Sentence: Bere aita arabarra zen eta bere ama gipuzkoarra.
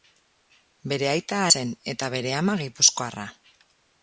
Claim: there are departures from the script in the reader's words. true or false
true